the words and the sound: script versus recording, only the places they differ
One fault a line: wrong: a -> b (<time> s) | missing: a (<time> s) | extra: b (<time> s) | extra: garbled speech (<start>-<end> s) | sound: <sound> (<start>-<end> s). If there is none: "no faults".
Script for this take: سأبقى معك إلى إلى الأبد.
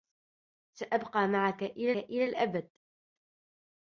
no faults